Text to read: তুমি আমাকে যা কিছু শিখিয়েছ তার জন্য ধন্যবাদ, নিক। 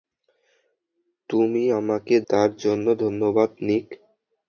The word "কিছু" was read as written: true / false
false